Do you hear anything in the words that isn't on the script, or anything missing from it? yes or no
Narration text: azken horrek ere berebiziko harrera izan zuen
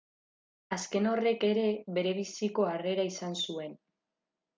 no